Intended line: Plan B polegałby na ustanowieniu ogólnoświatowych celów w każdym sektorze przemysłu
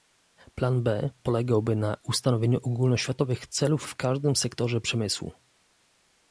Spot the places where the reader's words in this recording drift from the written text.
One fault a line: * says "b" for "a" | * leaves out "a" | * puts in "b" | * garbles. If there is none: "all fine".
all fine